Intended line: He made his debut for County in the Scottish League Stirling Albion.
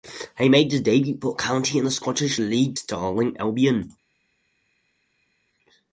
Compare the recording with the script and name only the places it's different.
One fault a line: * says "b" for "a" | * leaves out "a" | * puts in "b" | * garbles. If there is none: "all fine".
all fine